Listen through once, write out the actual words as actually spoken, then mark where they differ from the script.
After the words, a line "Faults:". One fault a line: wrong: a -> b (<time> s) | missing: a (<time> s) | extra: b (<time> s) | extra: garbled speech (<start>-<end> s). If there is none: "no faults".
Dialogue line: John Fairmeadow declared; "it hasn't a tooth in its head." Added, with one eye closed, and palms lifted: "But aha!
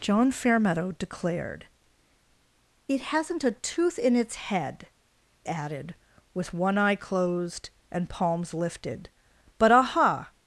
John Fairmeadow declared; "it hasn't a tooth in its head." Added, with one eye closed, and palms lifted: "But aha!
Faults:
no faults